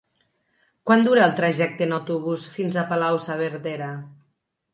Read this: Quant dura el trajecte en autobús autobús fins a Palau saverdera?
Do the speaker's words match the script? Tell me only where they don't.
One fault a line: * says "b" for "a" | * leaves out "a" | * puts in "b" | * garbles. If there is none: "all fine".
* leaves out "autobús"